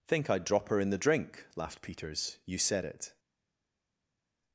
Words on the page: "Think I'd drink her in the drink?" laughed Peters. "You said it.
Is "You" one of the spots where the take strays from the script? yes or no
no